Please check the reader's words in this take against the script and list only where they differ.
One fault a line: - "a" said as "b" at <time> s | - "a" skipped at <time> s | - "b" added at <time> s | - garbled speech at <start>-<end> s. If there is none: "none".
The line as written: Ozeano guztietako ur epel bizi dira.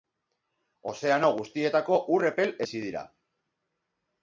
none